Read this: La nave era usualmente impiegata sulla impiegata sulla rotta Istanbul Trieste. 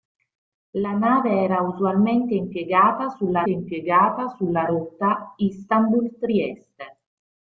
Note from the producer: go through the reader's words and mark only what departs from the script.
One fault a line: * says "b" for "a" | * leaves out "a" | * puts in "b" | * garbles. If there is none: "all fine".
all fine